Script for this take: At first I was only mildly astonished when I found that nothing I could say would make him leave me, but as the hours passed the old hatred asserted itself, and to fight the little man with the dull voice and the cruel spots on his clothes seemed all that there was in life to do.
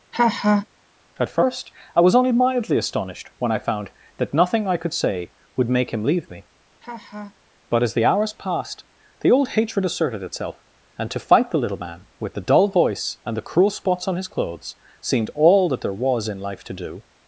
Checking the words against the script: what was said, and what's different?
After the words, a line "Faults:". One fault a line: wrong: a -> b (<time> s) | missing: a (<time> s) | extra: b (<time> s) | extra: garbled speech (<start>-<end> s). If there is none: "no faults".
At first I was only mildly astonished when I found that nothing I could say would make him leave me, but as the hours passed the old hatred asserted itself, and to fight the little man with the dull voice and the cruel spots on his clothes seemed all that there was in life to do.
Faults:
no faults